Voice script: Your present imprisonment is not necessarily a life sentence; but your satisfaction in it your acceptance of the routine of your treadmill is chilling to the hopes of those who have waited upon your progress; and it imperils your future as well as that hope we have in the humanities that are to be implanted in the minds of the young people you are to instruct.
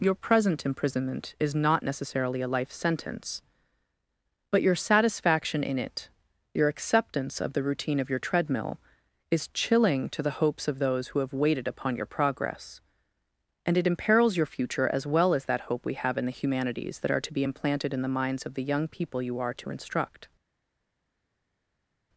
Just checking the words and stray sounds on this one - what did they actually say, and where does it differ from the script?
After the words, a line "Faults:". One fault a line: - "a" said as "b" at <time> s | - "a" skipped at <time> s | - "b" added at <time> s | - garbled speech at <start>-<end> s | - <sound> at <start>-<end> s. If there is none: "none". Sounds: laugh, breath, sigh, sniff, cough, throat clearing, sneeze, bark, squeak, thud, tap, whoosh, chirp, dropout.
Your present imprisonment is not necessarily a life sentence; but your satisfaction in it your acceptance of the routine of your treadmill is chilling to the hopes of those who have waited upon your progress; and it imperils your future as well as that hope we have in the humanities that are to be implanted in the minds of the young people you are to instruct.
Faults:
none